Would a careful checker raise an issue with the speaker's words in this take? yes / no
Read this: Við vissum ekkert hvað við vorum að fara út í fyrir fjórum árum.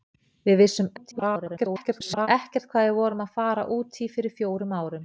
yes